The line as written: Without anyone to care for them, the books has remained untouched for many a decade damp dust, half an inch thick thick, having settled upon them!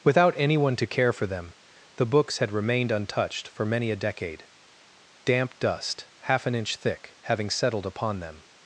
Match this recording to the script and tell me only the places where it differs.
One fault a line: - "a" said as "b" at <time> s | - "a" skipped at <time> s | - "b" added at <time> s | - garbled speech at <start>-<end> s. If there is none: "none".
- "has" said as "had" at 2.4 s
- "thick" skipped at 7.2 s